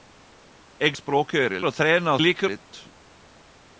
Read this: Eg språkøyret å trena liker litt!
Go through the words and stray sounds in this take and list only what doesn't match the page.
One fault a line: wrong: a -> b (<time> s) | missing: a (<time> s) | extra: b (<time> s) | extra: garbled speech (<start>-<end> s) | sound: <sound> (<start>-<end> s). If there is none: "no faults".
no faults